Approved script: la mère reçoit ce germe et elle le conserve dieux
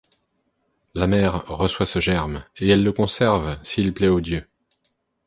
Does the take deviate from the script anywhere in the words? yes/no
yes